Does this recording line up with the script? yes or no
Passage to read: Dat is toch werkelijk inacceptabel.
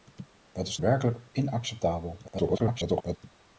no